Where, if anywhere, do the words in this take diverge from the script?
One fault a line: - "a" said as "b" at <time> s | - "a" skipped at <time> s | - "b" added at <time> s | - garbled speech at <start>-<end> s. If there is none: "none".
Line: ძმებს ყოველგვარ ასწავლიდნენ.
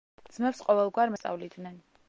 none